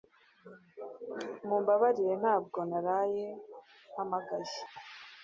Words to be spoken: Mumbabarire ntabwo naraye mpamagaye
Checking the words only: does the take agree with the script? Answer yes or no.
yes